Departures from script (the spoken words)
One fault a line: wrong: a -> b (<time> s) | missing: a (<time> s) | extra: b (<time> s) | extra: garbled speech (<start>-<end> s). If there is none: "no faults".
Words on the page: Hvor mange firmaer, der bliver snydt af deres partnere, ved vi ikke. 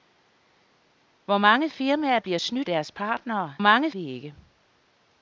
missing: der (2.2 s)
missing: af (2.7 s)
wrong: ved -> mange (3.6 s)